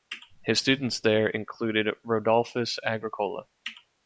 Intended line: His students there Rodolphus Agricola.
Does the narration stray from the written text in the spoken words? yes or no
yes